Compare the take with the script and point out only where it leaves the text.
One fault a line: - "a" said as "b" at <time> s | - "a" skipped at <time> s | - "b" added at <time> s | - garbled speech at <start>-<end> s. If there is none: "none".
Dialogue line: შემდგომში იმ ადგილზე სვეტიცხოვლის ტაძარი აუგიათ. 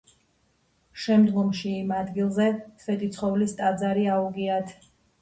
none